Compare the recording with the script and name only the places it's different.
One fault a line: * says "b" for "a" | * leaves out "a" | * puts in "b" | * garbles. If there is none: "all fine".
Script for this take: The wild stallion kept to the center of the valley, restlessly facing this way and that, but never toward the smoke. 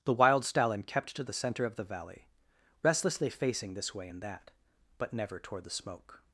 all fine